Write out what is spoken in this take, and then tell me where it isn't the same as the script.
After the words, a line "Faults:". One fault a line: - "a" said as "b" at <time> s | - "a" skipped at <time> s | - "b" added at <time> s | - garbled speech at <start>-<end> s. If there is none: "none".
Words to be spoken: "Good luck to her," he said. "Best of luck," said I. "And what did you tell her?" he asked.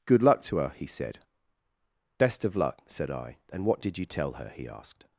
"Good luck to her," he said. "Best of luck," said I. "And what did you tell her?" he asked.
Faults:
none